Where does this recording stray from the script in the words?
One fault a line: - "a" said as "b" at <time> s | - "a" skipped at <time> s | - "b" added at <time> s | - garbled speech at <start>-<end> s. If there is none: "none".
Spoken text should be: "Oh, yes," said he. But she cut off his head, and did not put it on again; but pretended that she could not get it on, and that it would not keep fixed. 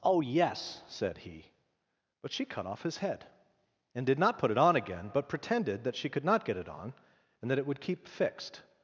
- "not" skipped at 7.8 s